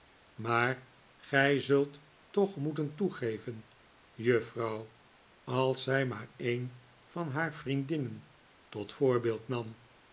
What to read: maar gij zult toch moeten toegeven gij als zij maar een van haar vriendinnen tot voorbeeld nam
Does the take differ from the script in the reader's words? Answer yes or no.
yes